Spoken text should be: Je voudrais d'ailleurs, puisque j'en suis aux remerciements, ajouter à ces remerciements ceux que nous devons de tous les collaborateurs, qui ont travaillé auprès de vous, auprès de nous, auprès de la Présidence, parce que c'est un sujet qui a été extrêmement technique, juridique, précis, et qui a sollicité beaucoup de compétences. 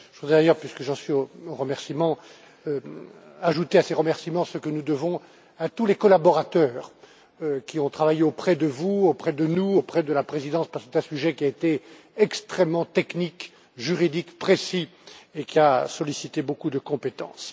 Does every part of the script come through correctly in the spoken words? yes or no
no